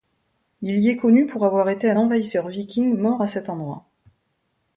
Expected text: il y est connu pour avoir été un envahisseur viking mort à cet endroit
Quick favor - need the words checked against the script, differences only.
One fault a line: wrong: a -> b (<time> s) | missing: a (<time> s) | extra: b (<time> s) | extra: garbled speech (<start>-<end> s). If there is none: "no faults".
no faults